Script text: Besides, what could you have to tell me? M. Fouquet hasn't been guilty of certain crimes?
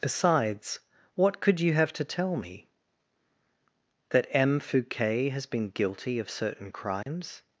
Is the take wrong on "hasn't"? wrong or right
wrong